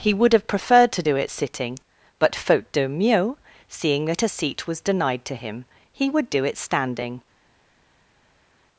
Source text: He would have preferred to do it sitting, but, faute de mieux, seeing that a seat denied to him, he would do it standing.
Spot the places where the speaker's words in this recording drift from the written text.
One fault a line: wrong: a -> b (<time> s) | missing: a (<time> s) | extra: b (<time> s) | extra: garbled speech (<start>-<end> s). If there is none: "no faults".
extra: was (4.6 s)